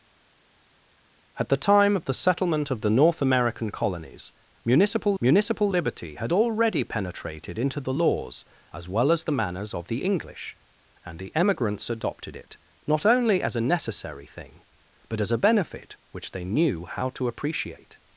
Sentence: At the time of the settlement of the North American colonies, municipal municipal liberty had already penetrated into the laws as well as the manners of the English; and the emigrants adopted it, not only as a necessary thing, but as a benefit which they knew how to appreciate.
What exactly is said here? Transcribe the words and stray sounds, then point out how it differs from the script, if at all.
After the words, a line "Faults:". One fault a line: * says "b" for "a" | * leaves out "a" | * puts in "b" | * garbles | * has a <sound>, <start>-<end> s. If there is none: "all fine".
At the time of the settlement of the North American colonies, municipal municipal liberty had already penetrated into the laws as well as the manners of the English; and the emigrants adopted it, not only as a necessary thing, but as a benefit which they knew how to appreciate.
Faults:
all fine